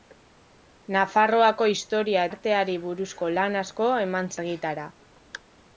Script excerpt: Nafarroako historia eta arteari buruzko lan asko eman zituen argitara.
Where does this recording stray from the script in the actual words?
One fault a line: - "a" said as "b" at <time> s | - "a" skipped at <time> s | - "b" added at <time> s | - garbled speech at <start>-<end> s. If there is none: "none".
- "eta" skipped at 2.2 s
- "zituen" skipped at 4.4 s